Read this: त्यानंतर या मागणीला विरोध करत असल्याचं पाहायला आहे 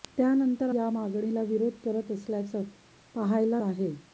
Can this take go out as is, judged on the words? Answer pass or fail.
pass